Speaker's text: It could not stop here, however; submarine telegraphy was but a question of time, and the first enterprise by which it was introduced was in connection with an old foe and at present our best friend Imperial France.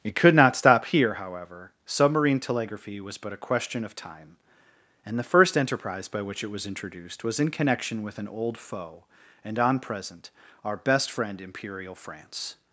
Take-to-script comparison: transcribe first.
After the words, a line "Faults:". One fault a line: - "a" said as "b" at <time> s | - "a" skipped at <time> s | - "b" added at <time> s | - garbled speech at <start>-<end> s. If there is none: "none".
It could not stop here, however; submarine telegraphy was but a question of time, and the first enterprise by which it was introduced was in connection with an old foe and on present our best friend Imperial France.
Faults:
- "at" said as "on" at 9.6 s